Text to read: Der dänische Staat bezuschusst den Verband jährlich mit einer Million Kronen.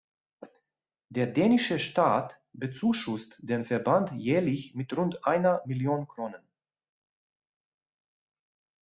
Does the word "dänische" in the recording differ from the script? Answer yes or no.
no